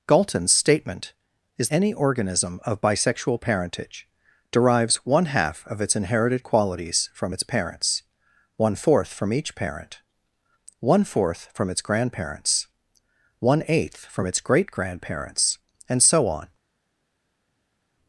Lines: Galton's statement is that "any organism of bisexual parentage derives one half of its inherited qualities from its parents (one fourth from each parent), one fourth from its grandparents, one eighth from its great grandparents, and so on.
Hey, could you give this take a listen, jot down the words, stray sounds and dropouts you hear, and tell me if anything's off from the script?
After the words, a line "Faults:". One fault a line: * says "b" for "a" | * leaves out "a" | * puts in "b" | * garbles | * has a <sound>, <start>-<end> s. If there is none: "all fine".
Galton's statement is "any organism of bisexual parentage derives one half of its inherited qualities from its parents (one fourth from each parent), one fourth from its grandparents, one eighth from its great grandparents, and so on.
Faults:
* leaves out "that"